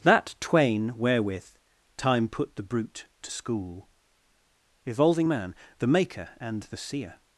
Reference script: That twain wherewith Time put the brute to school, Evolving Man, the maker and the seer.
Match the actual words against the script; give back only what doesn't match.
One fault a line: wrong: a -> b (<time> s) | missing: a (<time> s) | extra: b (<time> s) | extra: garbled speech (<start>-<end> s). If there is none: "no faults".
no faults